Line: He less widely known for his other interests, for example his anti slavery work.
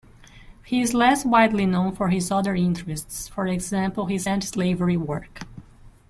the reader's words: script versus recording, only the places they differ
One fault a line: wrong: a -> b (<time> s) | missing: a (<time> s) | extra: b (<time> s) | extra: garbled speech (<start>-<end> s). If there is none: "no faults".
extra: is (0.8 s)